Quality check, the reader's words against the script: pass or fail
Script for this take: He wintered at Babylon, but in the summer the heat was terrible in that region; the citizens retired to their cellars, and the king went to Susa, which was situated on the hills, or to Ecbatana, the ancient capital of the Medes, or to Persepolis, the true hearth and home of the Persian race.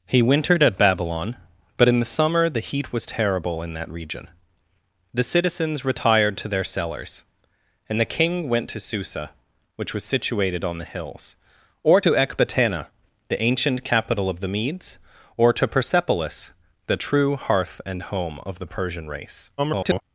fail